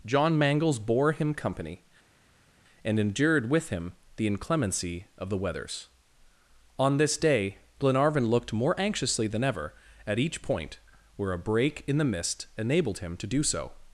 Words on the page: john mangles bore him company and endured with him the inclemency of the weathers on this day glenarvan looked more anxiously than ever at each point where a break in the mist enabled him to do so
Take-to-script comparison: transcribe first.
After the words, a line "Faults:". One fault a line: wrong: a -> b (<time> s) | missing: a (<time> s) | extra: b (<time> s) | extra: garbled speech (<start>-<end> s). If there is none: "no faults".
john mangles bore him company and endured with him the inclemency of the weathers on this day glenarvan looked more anxiously than ever at each point where a break in the mist enabled him to do so
Faults:
no faults